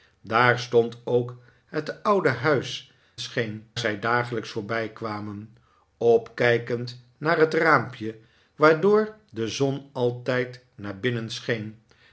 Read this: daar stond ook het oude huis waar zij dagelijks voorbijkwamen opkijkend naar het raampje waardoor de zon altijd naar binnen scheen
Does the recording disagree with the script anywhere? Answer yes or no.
yes